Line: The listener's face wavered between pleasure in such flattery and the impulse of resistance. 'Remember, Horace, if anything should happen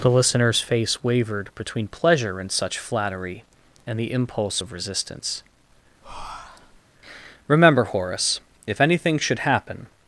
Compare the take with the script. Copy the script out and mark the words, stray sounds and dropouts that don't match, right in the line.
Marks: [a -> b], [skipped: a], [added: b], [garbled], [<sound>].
The listener's face wavered between pleasure in such flattery and the impulse of resistance. [breath] 'Remember, Horace, if anything should happen